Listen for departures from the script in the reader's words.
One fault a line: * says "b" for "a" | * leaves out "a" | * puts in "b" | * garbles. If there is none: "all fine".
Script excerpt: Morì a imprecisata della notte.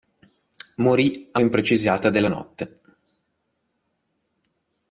all fine